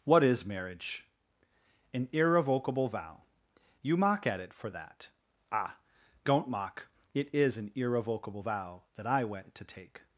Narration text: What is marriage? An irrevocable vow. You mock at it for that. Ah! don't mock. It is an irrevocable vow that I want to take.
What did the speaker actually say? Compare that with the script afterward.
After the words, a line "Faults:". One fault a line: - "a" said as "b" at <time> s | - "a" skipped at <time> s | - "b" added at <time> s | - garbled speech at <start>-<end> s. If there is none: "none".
What is marriage? An irrevocable vow. You mock at it for that. Ah! don't mock. It is an irrevocable vow that I went to take.
Faults:
- "want" said as "went" at 9.2 s